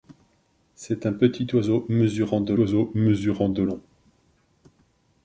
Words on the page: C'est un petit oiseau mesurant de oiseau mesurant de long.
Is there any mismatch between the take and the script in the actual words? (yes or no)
no